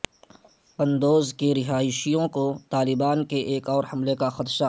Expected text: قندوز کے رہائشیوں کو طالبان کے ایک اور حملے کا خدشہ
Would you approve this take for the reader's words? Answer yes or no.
yes